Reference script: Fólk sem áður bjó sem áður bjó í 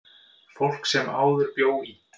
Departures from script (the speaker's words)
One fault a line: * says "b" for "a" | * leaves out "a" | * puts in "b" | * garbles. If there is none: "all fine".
* leaves out "sem áður bjó"